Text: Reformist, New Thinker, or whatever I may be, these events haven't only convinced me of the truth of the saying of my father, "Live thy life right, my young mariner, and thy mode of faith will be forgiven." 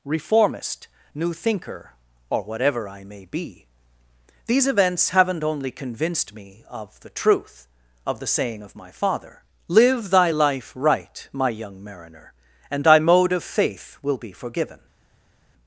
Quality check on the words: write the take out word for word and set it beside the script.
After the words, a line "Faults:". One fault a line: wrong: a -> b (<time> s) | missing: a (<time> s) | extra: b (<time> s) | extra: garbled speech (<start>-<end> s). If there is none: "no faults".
Reformist, New Thinker, or whatever I may be, these events haven't only convinced me of the truth of the saying of my father, "Live thy life right, my young mariner, and thy mode of faith will be forgiven."
Faults:
no faults